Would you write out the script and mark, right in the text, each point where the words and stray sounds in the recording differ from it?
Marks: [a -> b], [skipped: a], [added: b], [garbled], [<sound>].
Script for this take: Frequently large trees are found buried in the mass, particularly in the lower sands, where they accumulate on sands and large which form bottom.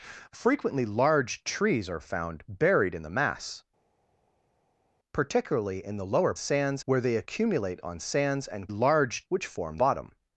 Frequently large trees are found buried in the mass, particularly in the lower sands, where they accumulate on sands and large which form bottom.